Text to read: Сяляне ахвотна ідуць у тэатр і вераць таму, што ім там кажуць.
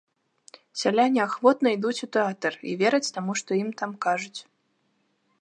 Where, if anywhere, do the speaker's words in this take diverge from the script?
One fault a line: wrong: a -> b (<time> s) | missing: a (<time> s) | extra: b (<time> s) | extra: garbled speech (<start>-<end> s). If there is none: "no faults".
no faults